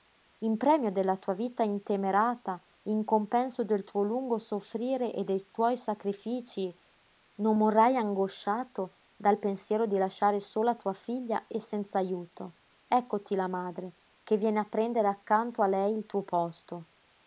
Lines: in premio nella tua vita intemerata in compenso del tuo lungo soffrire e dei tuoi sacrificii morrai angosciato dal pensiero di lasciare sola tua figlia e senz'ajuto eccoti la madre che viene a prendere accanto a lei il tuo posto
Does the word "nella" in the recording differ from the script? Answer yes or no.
yes